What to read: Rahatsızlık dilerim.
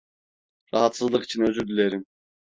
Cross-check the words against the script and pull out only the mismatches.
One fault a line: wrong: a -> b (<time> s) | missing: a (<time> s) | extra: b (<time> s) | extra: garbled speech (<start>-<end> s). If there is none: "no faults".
extra: için özür (1.2 s)